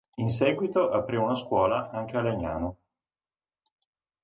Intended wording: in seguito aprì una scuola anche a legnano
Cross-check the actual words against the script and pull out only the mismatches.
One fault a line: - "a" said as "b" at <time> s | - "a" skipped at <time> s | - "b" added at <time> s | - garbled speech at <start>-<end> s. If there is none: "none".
none